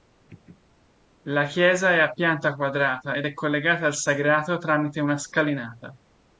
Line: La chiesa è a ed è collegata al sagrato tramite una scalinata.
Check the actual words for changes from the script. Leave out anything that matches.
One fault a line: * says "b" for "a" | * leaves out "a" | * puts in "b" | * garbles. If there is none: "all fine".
* puts in "pianta quadrata"